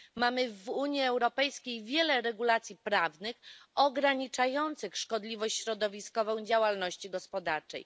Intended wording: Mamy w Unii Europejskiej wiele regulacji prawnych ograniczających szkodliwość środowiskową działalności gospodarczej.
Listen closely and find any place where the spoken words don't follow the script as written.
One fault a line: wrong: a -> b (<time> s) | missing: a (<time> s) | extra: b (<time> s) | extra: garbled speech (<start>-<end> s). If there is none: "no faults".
no faults